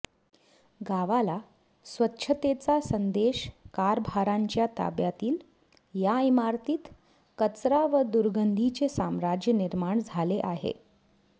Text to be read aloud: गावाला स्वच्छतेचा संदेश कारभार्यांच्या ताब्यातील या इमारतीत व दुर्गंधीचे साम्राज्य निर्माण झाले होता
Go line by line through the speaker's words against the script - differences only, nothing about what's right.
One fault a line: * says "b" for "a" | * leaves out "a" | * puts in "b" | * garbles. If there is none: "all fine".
* puts in "कचरा"
* says "आहे" for "होता"